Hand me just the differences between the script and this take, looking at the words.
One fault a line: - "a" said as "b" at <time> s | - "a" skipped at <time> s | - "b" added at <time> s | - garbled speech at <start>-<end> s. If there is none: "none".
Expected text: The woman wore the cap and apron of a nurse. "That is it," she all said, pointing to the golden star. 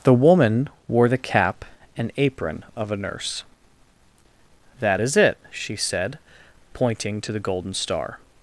- "all" skipped at 5.7 s